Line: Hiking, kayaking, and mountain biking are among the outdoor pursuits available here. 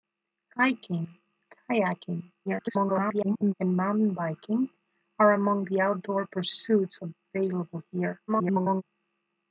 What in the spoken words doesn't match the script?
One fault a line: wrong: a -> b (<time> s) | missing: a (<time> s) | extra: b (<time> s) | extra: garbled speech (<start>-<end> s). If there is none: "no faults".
extra: garbled speech (2.5-3.5 s)
extra: garbled speech (8.3-8.8 s)